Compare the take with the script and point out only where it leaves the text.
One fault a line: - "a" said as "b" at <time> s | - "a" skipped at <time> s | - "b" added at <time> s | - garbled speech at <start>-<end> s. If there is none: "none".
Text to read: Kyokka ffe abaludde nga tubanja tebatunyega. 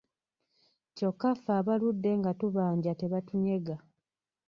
none